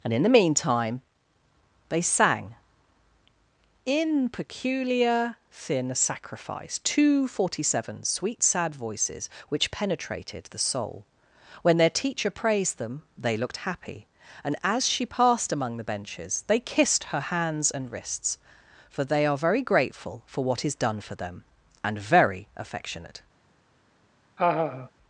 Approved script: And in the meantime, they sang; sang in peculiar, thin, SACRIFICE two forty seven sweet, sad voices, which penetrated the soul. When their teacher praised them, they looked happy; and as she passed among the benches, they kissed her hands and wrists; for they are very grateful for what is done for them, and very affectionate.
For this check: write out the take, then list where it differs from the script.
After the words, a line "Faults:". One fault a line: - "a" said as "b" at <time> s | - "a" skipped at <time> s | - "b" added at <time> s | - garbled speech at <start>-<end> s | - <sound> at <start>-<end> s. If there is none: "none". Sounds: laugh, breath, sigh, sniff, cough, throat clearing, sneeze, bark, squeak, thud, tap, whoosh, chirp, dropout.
And in the meantime, they sang; in peculiar, thin, SACRIFICE two forty seven sweet, sad voices, which penetrated the soul. When their teacher praised them, they looked happy; and as she passed among the benches, they kissed her hands and wrists; for they are very grateful for what is done for them, and very affectionate.
Faults:
- "sang" skipped at 2.5 s
- laugh at 24.4-24.9 s